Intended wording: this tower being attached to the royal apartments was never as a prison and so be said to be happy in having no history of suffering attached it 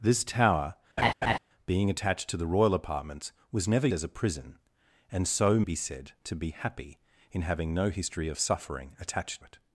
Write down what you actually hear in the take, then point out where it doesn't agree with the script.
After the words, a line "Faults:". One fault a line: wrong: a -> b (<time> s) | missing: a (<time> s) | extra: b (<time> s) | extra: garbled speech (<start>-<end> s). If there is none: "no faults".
this tower being attached to the royal apartments was never as a prison and so be said to be happy in having no history of suffering attached it
Faults:
no faults